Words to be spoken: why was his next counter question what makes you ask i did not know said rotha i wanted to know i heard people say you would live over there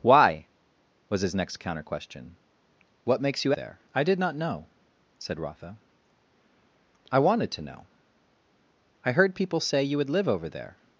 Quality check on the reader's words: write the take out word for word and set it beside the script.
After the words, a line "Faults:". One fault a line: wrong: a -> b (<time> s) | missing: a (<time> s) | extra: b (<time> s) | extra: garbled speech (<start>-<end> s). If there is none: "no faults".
why was his next counter question what makes you there i did not know said rotha i wanted to know i heard people say you would live over there
Faults:
wrong: ask -> there (3.5 s)